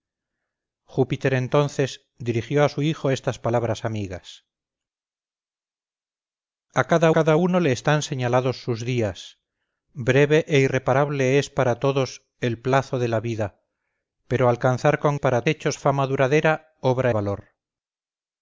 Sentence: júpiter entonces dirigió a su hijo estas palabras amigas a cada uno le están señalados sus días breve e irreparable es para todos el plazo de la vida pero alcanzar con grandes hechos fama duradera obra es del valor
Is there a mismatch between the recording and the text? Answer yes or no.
yes